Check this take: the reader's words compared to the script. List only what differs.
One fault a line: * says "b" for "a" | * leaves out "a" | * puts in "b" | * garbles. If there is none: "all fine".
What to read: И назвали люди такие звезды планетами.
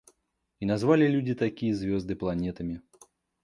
all fine